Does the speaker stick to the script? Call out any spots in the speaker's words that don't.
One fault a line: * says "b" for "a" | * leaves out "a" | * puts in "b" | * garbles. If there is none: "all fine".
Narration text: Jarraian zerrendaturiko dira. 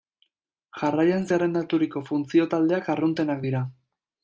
* puts in "funtzio taldeak arruntenak"